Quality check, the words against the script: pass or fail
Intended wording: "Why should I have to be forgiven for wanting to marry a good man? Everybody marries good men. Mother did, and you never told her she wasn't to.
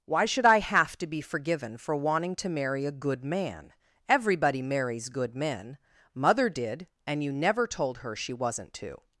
pass